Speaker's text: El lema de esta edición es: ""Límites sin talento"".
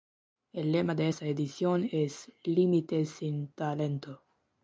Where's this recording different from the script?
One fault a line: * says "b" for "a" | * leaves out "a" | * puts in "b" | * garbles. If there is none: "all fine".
all fine